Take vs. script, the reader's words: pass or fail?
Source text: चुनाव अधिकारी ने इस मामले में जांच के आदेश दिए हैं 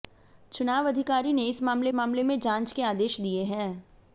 fail